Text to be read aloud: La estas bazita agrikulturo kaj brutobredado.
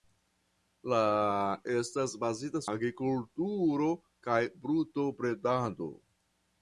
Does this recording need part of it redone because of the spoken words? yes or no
no